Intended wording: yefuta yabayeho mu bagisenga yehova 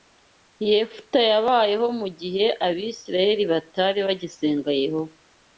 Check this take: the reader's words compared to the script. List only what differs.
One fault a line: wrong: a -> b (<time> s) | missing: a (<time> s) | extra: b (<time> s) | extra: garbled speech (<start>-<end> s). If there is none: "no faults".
extra: gihe abisirayeli batari (2.2 s)